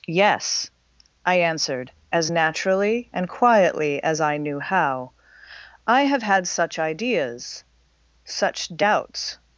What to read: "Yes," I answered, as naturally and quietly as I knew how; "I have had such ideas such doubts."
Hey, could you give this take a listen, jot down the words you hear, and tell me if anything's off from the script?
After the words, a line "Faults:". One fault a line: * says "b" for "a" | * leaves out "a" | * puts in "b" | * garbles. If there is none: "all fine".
"Yes," I answered, as naturally and quietly as I knew how; "I have had such ideas such doubts."
Faults:
all fine